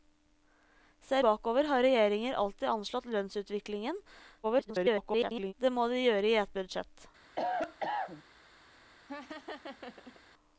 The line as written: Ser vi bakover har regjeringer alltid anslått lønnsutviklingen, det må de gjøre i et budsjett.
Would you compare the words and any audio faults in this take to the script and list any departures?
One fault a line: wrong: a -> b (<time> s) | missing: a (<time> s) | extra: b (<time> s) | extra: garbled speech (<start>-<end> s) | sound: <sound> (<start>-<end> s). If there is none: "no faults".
missing: vi (1.2 s)
extra: garbled speech (4.4-5.5 s)
sound: cough (7.4-8.2 s)
sound: laugh (9.1-10.2 s)